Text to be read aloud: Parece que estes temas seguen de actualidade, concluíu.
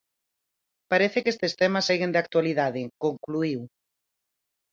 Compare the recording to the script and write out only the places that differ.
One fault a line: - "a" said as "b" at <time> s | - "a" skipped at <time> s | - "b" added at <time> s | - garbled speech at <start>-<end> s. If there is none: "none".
none